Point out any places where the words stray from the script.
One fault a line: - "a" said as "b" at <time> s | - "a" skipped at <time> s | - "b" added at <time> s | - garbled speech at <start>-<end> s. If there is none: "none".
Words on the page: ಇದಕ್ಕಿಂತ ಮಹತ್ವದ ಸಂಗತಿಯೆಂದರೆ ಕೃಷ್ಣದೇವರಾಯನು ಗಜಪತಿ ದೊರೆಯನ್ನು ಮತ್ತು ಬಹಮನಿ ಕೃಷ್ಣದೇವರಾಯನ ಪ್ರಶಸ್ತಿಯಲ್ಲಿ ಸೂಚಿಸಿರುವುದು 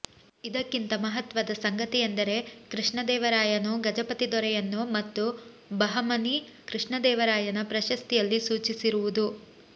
none